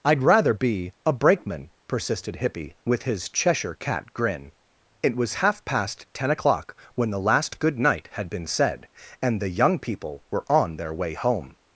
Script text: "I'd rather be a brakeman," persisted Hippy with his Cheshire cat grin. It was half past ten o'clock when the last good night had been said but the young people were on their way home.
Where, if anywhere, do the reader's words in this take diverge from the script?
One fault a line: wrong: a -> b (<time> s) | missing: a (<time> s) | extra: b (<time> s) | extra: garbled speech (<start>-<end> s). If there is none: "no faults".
wrong: but -> and (9.2 s)